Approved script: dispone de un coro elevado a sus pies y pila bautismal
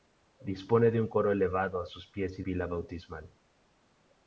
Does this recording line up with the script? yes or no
yes